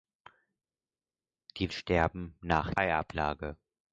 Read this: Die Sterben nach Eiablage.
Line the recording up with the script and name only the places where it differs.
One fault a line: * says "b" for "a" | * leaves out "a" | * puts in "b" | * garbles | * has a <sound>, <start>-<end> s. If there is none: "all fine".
all fine